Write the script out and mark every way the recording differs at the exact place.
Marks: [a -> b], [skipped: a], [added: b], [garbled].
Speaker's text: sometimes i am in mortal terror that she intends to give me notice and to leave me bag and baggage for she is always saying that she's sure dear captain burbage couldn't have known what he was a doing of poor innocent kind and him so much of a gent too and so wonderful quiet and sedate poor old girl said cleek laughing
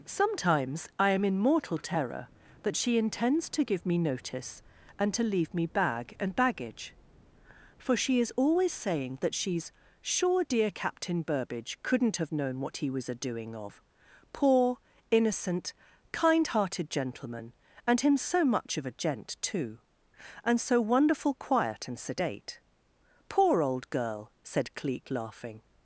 sometimes i am in mortal terror that she intends to give me notice and to leave me bag and baggage for she is always saying that she's sure dear captain burbage couldn't have known what he was a doing of poor innocent kind [added: hearted gentleman] and him so much of a gent too and so wonderful quiet and sedate poor old girl said cleek laughing